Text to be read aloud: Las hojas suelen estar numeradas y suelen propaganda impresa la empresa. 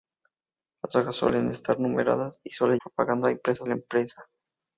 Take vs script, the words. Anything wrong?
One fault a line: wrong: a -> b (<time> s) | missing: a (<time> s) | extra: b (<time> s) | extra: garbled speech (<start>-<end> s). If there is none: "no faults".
no faults